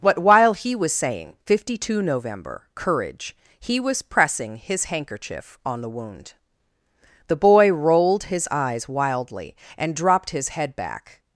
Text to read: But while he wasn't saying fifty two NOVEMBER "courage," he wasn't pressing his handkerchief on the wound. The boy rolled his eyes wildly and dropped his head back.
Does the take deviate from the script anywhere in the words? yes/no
yes